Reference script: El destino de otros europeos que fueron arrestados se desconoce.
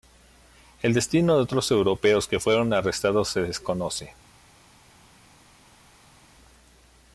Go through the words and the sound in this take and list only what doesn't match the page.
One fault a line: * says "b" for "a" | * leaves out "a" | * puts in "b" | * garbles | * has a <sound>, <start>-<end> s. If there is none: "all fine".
all fine